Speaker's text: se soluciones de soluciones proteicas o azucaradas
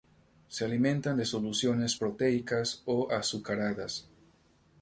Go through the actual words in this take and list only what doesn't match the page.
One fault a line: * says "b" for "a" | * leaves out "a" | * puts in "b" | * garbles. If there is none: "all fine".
* says "alimentan" for "soluciones"